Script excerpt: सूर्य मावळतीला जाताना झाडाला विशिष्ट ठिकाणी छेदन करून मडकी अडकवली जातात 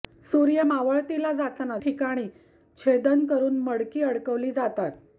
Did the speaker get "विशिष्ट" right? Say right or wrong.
wrong